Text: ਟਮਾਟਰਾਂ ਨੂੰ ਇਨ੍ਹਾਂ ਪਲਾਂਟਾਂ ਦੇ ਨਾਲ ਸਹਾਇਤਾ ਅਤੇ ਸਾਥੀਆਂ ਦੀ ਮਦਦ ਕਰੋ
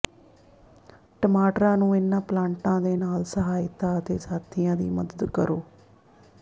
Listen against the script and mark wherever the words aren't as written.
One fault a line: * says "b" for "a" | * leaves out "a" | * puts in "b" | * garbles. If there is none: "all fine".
all fine